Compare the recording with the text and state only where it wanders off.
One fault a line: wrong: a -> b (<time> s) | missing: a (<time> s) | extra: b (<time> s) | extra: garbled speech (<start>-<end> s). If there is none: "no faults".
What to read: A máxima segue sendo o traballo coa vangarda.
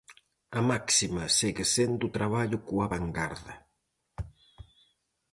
no faults